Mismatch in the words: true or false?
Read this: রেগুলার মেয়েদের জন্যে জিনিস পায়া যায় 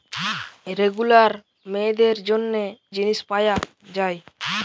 false